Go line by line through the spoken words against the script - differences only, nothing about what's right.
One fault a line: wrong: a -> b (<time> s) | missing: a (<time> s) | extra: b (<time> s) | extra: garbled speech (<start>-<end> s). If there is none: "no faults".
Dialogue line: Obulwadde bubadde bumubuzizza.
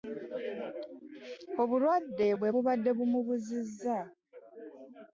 extra: bwe (2.4 s)